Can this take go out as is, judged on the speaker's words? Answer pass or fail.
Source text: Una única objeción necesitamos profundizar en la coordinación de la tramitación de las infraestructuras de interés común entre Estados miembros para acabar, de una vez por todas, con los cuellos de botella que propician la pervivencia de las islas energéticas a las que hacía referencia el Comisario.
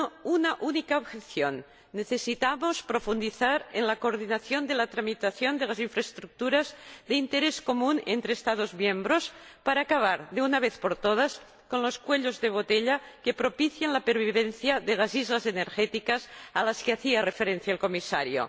pass